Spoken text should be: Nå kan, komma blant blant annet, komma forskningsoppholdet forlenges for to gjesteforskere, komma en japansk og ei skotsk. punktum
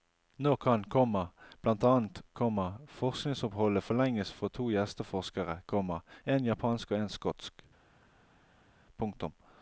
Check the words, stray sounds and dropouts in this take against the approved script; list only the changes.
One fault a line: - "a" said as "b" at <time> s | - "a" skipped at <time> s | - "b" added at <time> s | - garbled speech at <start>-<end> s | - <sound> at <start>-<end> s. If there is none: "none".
- "blant" skipped at 1.8 s
- "ei" said as "en" at 7.0 s